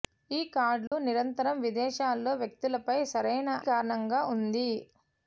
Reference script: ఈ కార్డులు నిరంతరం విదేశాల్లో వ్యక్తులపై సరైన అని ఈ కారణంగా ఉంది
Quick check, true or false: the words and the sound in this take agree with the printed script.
false